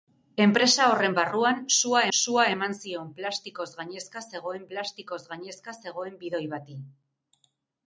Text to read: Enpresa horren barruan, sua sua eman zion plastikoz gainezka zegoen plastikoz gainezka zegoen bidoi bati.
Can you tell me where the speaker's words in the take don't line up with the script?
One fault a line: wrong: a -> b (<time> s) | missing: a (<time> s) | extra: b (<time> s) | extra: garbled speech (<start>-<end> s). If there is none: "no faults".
no faults